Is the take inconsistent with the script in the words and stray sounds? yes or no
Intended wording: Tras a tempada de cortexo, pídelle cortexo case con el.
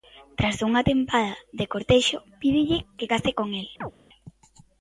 yes